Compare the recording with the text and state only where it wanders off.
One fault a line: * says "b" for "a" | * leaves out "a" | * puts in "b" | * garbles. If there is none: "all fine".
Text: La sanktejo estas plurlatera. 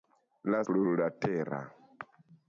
* leaves out "sanktejo estas"